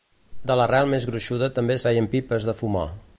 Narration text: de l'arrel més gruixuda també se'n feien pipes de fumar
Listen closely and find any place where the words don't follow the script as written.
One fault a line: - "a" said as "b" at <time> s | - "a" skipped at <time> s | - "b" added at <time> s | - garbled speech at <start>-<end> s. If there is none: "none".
- "se'n" skipped at 1.8 s